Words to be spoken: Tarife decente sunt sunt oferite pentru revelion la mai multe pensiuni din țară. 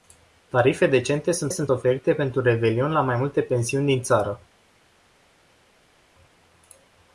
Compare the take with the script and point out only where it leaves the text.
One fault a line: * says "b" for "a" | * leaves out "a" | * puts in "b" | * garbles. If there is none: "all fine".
all fine